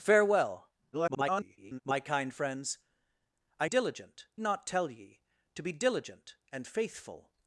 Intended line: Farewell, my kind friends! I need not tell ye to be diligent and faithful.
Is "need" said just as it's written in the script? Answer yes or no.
no